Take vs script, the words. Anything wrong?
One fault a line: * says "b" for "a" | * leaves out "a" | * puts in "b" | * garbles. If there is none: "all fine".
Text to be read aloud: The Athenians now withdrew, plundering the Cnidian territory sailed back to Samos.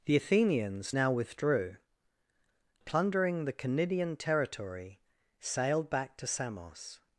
all fine